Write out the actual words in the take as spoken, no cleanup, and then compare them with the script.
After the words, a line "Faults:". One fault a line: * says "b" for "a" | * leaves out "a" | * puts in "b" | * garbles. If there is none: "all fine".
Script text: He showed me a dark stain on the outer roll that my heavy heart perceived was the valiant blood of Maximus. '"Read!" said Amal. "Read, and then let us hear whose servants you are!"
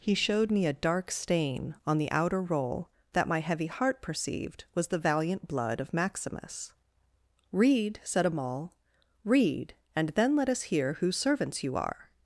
He showed me a dark stain on the outer roll that my heavy heart perceived was the valiant blood of Maximus. '"Read!" said Amal. "Read, and then let us hear whose servants you are!"
Faults:
all fine